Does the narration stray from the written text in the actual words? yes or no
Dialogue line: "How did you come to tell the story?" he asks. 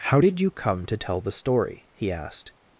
yes